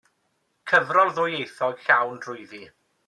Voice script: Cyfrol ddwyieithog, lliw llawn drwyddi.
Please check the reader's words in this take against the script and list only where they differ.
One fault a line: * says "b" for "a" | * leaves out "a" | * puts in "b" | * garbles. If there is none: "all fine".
* leaves out "lliw"